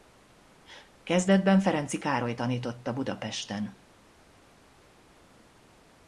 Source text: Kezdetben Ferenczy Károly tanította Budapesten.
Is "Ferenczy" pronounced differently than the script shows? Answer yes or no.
no